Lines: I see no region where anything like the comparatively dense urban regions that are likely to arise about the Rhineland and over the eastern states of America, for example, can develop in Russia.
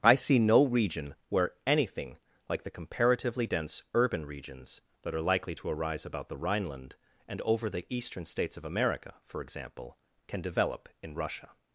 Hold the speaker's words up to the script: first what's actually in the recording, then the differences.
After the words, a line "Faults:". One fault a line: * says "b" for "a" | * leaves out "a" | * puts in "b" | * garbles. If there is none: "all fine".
I see no region where anything like the comparatively dense urban regions that are likely to arise about the Rhineland and over the eastern states of America, for example, can develop in Russia.
Faults:
all fine